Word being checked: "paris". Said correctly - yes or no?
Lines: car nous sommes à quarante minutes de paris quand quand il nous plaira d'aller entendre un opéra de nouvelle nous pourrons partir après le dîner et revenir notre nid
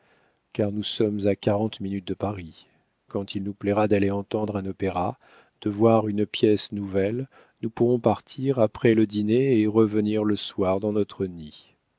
yes